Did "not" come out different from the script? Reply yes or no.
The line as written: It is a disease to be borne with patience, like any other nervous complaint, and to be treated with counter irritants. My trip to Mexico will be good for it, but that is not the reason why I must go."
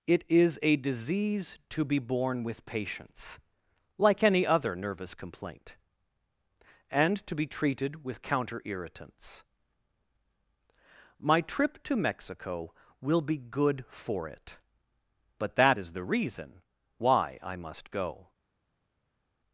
yes